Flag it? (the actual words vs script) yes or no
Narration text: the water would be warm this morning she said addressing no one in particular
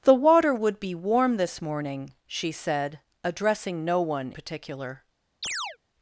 yes